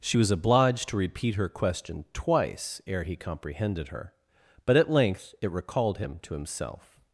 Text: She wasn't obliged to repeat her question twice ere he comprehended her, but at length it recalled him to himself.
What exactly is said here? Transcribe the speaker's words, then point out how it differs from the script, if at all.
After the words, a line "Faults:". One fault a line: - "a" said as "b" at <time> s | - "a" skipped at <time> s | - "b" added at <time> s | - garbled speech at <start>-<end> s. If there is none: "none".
She was obliged to repeat her question twice ere he comprehended her, but at length it recalled him to himself.
Faults:
- "wasn't" said as "was" at 0.2 s